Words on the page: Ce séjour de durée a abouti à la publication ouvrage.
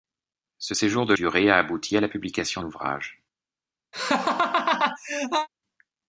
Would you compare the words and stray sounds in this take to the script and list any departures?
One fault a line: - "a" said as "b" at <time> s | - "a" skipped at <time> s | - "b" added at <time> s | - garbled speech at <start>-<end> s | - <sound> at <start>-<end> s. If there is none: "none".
- laugh at 3.9-5.5 s